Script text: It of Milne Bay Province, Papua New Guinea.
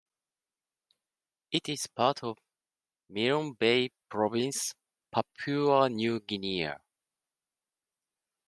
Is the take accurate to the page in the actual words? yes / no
no